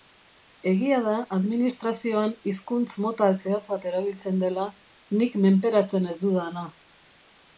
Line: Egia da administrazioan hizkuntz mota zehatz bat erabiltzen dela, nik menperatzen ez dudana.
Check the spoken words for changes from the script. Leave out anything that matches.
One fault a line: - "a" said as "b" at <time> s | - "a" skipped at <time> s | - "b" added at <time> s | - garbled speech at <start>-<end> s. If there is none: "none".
none